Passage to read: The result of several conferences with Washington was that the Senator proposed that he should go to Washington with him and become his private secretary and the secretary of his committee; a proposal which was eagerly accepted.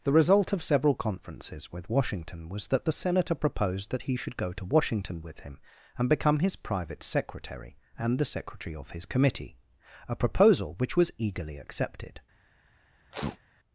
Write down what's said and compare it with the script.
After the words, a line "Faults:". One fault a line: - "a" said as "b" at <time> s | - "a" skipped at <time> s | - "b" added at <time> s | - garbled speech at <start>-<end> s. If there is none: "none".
The result of several conferences with Washington was that the Senator proposed that he should go to Washington with him and become his private secretary and the secretary of his committee; a proposal which was eagerly accepted.
Faults:
none